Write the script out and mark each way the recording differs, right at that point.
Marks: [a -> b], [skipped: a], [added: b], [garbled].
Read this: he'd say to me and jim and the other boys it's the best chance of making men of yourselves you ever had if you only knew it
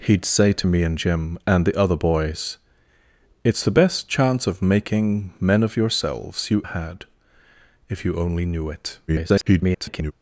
he'd say to me and jim and the other boys it's the best chance of making men of yourselves you [skipped: ever] had if you only knew it [garbled]